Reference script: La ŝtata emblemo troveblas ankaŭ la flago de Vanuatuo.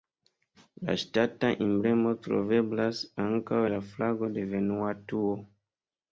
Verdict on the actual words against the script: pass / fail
pass